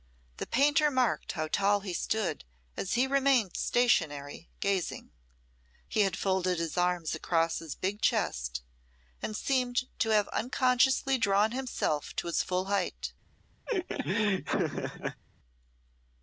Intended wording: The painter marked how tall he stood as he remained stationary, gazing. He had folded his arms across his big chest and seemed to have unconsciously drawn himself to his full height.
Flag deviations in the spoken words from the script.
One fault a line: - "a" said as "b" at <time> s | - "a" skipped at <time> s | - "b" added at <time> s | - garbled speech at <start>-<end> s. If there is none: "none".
none